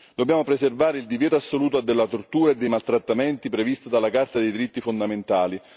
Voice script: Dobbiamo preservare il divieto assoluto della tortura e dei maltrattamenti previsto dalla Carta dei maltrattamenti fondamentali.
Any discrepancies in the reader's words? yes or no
yes